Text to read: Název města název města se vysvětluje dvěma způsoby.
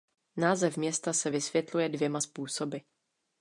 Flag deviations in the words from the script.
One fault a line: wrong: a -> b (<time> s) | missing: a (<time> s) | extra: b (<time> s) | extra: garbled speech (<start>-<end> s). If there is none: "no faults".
missing: název města (1.1 s)